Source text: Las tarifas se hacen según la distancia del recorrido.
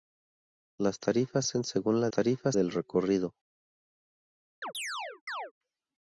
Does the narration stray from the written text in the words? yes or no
yes